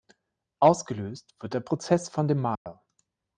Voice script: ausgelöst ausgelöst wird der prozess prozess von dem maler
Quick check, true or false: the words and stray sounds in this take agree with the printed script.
false